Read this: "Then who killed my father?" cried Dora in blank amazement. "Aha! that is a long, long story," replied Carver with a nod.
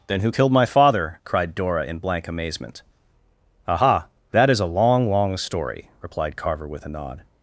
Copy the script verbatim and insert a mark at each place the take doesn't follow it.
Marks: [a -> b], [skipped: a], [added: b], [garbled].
"Then who killed my father?" cried Dora in blank amazement. "Aha! that is a long, long story," replied Carver with a nod.